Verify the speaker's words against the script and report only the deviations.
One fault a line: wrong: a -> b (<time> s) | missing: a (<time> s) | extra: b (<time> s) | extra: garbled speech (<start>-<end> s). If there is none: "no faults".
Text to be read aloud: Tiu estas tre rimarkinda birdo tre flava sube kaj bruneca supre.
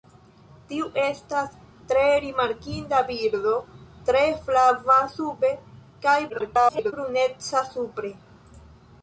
extra: garbled speech (6.3-6.9 s)